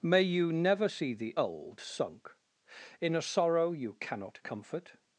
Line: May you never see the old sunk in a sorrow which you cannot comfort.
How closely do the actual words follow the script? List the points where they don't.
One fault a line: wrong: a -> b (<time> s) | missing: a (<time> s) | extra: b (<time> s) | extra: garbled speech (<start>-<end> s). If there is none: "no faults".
missing: which (3.7 s)